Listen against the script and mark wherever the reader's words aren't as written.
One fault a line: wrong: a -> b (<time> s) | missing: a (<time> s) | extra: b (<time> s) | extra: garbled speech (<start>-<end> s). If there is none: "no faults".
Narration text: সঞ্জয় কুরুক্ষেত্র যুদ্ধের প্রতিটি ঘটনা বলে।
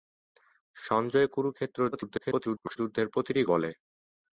extra: garbled speech (1.9-2.8 s)
missing: ঘটনা (3.4 s)